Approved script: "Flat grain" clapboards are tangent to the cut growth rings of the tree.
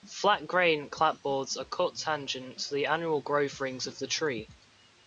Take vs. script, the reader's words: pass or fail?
fail